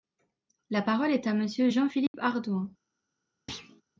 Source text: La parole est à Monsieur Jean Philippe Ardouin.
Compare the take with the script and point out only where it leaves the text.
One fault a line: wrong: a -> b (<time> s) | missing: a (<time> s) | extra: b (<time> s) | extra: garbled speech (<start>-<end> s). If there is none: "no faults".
no faults